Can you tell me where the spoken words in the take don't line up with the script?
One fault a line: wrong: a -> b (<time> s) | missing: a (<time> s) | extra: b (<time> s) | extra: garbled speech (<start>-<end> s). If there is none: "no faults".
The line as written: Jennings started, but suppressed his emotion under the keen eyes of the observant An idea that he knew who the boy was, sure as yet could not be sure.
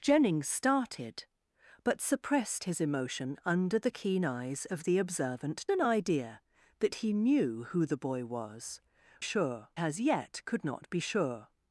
no faults